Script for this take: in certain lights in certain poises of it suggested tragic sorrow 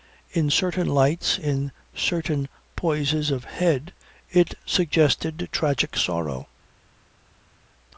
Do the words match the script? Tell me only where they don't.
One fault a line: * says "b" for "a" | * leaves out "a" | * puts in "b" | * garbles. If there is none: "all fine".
* puts in "head"